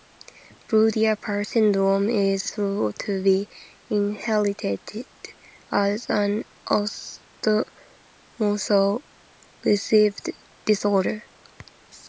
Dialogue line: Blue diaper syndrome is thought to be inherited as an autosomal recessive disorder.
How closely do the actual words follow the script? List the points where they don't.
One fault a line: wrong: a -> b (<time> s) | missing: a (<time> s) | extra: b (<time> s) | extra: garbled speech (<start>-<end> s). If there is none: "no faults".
no faults